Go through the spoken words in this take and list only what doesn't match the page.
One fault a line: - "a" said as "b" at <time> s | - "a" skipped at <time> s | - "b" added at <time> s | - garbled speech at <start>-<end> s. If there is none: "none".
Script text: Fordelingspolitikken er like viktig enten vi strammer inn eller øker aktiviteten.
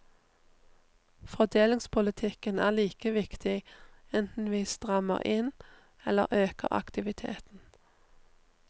none